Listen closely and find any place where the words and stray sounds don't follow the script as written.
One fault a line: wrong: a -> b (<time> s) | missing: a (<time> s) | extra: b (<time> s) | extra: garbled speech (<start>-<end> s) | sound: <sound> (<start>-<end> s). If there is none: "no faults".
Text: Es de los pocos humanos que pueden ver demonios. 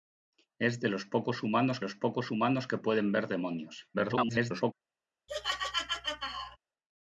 extra: los pocos humanos (1.8 s)
extra: garbled speech (3.9-4.7 s)
sound: laugh (5.3-6.6 s)